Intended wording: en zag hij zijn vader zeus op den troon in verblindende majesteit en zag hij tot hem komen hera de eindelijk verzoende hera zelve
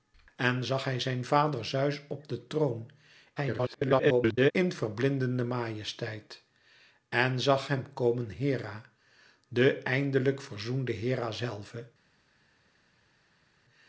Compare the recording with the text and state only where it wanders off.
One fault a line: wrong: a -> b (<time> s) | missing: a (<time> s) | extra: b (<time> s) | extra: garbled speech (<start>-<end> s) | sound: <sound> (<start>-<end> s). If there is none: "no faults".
extra: garbled speech (3.4-4.5 s)
missing: hij tot (7.7 s)